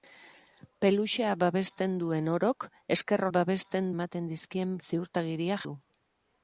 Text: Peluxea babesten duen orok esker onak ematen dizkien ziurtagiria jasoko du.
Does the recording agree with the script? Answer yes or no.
no